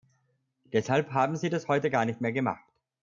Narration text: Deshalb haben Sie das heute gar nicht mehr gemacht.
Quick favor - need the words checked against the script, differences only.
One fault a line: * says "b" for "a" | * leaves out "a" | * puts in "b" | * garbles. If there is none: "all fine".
all fine